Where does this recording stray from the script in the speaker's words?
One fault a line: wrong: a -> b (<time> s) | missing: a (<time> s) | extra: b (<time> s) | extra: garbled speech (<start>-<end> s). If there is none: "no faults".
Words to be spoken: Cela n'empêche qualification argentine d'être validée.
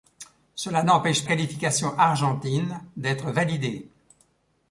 no faults